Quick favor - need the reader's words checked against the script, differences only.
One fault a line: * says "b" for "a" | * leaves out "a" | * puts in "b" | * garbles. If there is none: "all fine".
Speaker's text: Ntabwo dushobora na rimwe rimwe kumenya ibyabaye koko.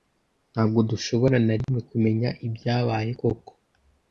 * leaves out "rimwe"